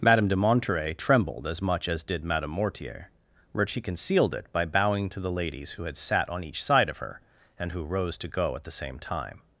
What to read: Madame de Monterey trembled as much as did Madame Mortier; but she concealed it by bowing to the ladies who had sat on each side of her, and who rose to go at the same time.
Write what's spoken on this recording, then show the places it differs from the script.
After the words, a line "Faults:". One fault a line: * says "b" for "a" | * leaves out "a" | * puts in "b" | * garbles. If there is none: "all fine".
Madame de Monterey trembled as much as did Madame Mortier; but she concealed it by bowing to the ladies who had sat on each side of her, and who rose to go at the same time.
Faults:
all fine